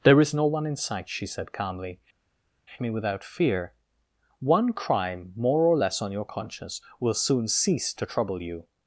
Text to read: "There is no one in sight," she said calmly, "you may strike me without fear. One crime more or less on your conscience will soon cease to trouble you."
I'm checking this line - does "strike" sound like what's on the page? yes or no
no